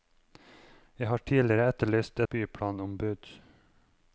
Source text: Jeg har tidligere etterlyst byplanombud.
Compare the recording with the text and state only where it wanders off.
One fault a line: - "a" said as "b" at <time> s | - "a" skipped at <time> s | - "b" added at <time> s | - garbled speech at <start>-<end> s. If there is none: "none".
none